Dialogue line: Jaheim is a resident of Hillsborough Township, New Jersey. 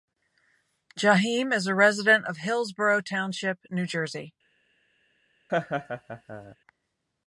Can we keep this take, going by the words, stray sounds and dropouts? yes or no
no